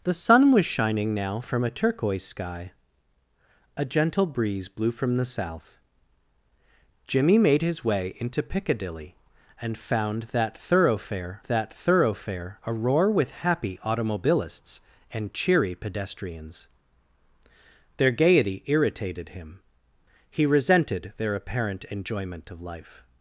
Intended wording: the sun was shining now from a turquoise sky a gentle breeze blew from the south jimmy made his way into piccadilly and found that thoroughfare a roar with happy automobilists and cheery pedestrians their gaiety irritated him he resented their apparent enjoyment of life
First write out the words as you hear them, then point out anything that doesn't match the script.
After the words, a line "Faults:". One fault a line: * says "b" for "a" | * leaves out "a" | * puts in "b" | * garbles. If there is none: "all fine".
the sun was shining now from a turquoise sky a gentle breeze blew from the south jimmy made his way into piccadilly and found that thoroughfare that thoroughfare a roar with happy automobilists and cheery pedestrians their gaiety irritated him he resented their apparent enjoyment of life
Faults:
* puts in "that thoroughfare"